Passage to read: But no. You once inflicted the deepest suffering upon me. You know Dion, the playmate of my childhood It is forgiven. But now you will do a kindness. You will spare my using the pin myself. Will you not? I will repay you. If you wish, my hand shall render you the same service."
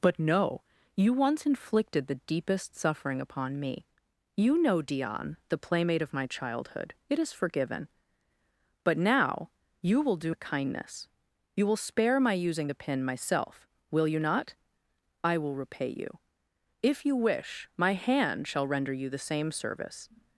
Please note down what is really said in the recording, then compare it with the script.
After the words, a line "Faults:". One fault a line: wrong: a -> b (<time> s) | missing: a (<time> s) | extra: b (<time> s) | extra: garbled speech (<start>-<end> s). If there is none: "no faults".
But no. You once inflicted the deepest suffering upon me. You know Dion, the playmate of my childhood It is forgiven. But now you will do a kindness. You will spare my using the pin myself. Will you not? I will repay you. If you wish, my hand shall render you the same service."
Faults:
no faults